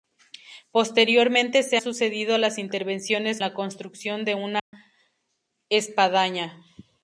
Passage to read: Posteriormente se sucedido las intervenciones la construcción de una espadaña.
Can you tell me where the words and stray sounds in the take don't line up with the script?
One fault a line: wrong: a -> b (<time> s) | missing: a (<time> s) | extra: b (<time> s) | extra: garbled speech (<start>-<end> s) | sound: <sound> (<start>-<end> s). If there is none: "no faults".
sound: dropout (4.6-4.7 s)